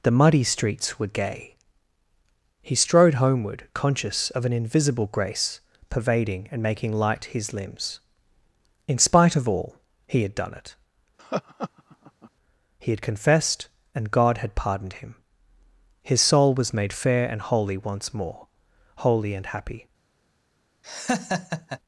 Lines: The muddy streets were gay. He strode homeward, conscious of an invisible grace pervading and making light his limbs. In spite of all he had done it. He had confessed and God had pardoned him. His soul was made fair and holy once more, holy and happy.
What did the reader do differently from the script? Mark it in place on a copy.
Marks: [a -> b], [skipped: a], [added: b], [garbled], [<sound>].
The muddy streets were gay. He strode homeward, conscious of an invisible grace pervading and making light his limbs. In spite of all he had done it. [laugh] He had confessed and God had pardoned him. His soul was made fair and holy once more, holy and happy. [laugh]